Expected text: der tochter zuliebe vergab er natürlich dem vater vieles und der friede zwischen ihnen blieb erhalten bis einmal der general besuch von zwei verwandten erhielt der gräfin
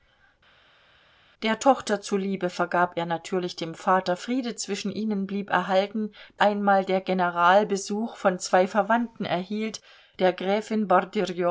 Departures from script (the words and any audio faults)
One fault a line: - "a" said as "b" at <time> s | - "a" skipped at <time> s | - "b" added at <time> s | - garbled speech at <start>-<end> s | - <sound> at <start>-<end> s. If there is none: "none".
- "vieles und der" skipped at 4.2 s
- "bis" skipped at 6.1 s